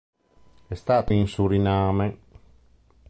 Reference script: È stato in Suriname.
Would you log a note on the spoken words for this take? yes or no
no